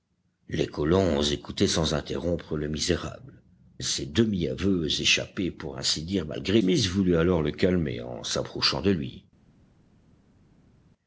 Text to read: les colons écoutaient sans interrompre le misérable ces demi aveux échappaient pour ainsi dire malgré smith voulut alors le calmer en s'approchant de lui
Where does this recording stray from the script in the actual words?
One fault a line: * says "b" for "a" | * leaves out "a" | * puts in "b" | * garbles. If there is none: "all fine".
all fine